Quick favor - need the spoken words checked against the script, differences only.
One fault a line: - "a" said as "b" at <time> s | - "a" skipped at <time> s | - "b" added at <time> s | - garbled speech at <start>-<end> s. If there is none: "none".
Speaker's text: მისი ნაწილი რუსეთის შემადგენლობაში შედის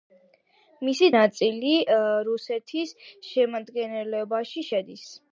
none